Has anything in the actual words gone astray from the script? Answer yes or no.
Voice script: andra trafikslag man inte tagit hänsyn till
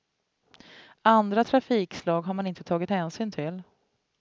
yes